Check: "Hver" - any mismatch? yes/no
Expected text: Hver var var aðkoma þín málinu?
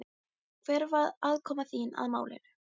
no